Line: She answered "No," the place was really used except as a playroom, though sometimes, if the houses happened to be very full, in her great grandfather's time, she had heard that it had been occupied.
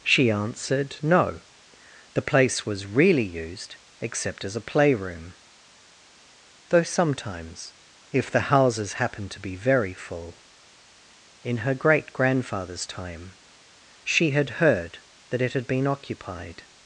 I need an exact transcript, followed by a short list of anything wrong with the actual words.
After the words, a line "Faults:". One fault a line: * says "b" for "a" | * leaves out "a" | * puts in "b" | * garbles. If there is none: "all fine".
She answered "No," the place was really used except as a playroom, though sometimes, if the houses happened to be very full, in her great grandfather's time, she had heard that it had been occupied.
Faults:
all fine